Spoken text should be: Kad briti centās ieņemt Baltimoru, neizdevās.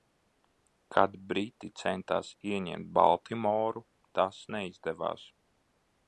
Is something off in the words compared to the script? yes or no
yes